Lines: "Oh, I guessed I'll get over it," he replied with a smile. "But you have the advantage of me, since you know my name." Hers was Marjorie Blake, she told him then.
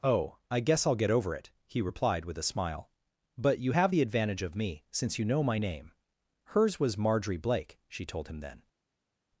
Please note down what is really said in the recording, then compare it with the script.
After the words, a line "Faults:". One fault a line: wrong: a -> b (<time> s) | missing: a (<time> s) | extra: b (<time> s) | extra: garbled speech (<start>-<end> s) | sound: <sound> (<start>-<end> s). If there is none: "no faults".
"Oh, I guess I'll get over it," he replied with a smile. "But you have the advantage of me, since you know my name." Hers was Marjorie Blake, she told him then.
Faults:
wrong: guessed -> guess (0.6 s)